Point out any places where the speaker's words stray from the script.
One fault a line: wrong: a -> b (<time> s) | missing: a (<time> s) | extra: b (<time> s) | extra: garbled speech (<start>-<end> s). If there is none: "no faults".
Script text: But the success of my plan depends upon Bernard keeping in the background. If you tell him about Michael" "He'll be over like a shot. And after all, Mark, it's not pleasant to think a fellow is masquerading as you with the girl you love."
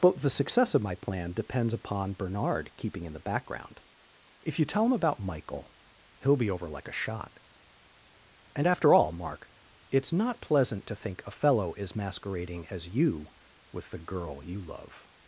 no faults